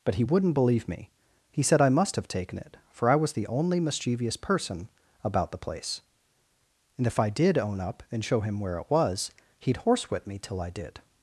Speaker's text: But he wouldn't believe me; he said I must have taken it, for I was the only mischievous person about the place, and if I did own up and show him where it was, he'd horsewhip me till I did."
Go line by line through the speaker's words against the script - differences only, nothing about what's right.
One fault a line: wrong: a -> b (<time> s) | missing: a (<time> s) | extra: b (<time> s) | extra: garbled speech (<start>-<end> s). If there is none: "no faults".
no faults